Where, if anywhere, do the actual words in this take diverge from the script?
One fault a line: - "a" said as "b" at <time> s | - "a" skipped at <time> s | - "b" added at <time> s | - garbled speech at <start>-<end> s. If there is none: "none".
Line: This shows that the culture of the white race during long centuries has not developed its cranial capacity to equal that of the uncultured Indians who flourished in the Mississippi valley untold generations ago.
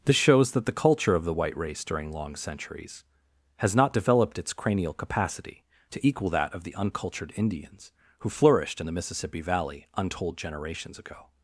none